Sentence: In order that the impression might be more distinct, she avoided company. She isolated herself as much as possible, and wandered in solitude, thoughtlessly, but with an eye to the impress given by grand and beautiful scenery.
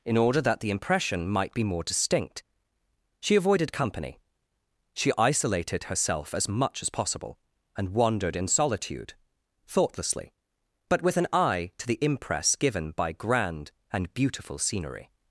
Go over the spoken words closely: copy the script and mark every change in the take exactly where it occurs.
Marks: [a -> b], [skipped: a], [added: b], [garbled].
In order that the impression might be more distinct, she avoided company. She isolated herself as much as possible, and wandered in solitude, thoughtlessly, but with an eye to the impress given by grand and beautiful scenery.